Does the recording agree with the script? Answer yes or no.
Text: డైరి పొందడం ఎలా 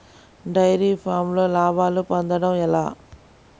no